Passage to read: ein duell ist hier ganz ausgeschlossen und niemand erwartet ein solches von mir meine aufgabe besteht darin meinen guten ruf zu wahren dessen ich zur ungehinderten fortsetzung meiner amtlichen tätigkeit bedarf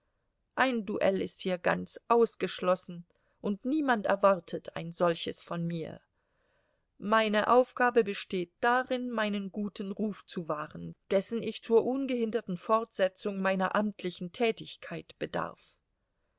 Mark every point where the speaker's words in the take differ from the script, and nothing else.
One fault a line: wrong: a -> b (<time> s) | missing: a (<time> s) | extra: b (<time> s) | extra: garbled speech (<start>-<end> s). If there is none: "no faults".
no faults